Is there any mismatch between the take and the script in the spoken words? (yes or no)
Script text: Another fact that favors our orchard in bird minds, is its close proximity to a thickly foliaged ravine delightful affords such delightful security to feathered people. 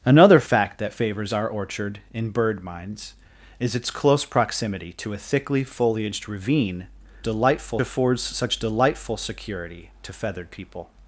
no